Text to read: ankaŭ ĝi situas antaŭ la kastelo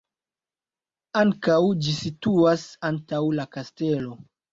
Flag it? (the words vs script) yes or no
no